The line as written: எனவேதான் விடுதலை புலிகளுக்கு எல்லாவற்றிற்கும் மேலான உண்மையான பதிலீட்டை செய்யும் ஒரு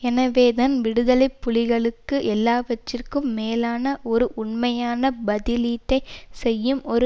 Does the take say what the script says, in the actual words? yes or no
no